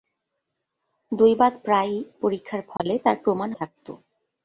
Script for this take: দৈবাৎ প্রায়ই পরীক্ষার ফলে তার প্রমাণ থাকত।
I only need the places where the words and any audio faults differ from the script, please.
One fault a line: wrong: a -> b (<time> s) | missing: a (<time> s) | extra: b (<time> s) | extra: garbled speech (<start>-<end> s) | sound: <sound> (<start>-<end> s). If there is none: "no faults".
sound: dropout (2.8-2.8 s)